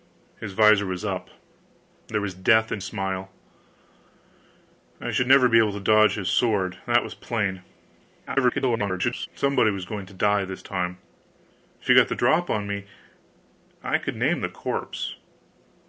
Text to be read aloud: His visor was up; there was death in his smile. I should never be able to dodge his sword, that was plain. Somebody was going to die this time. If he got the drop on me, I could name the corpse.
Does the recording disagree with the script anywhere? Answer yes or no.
yes